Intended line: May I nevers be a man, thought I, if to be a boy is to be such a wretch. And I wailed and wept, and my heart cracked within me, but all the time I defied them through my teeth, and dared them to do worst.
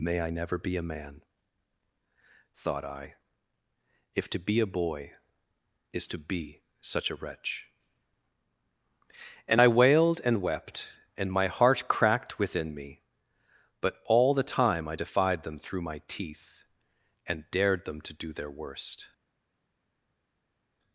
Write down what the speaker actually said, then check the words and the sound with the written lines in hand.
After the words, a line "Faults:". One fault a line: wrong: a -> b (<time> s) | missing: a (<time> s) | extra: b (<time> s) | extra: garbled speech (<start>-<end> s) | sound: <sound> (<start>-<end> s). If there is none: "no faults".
May I never be a man, thought I, if to be a boy is to be such a wretch. And I wailed and wept, and my heart cracked within me, but all the time I defied them through my teeth, and dared them to do their worst.
Faults:
wrong: nevers -> never (0.3 s)
extra: their (18.3 s)